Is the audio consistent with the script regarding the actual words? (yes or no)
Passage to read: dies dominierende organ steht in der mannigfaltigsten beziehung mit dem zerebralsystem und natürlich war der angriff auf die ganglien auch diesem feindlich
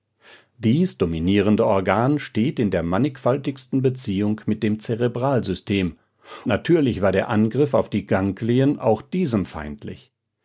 no